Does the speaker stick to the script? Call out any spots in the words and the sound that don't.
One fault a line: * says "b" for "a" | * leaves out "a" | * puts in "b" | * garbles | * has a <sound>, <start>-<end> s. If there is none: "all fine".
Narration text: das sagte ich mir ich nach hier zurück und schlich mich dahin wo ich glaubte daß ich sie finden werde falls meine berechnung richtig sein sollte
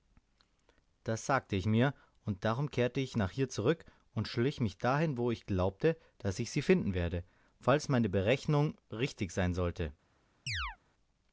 * puts in "und darum kehrte"
* has a chirp, 10.5-10.8 s